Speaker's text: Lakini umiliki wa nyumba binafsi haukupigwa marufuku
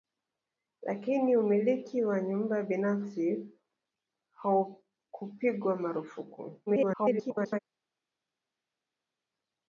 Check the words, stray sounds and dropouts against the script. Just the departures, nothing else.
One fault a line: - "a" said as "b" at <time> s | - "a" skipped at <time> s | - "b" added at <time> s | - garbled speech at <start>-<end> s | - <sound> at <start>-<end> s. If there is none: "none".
- garbled speech at 6.7-7.6 s